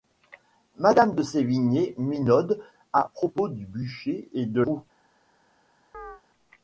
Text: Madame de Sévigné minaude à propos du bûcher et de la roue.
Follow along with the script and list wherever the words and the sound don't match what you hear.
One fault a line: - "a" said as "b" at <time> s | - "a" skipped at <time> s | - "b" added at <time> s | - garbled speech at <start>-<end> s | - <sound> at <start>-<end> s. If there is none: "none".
- "la" skipped at 4.6 s
- chirp at 5.9-6.2 s